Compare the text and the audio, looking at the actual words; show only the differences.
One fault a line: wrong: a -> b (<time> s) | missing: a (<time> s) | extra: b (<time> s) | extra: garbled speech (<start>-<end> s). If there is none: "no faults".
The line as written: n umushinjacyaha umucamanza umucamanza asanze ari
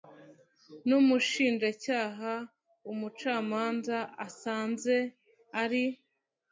missing: umucamanza (4.0 s)